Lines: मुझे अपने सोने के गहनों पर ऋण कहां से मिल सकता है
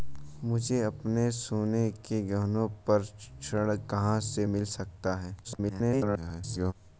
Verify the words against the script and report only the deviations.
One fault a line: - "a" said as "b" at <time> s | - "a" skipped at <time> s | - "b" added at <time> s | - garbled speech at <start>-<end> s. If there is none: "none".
- garbled speech at 5.4-6.7 s